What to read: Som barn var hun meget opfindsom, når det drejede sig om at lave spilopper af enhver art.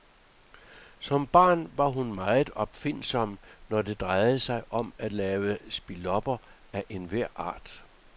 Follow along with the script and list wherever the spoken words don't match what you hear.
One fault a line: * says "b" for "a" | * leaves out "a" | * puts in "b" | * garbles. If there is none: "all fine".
all fine